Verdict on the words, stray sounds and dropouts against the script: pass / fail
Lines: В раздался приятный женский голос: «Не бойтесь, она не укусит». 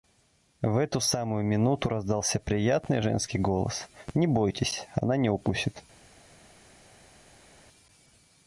fail